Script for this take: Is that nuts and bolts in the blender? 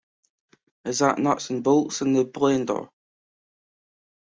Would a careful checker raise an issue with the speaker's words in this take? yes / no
no